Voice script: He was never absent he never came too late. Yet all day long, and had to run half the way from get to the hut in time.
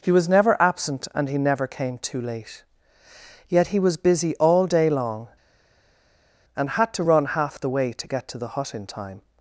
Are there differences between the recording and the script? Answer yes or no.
yes